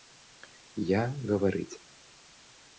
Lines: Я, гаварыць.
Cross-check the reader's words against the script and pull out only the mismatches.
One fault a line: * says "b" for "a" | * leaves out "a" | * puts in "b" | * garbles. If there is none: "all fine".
all fine